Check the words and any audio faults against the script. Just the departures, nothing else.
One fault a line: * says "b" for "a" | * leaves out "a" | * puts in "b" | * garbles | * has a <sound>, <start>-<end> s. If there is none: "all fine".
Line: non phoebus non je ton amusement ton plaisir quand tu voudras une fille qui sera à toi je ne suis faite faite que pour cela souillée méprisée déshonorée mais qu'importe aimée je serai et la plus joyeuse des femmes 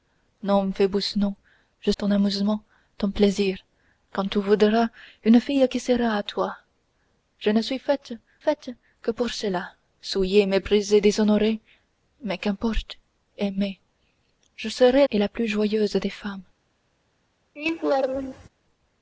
* has a laugh, 17.6-18.5 s